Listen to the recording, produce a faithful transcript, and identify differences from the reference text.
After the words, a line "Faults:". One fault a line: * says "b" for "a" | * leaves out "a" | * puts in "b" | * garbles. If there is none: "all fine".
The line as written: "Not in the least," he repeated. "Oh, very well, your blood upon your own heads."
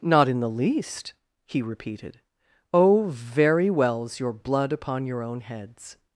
"Not in the least," he repeated. "Oh, very wells, your blood upon your own heads."
Faults:
* says "wells" for "well"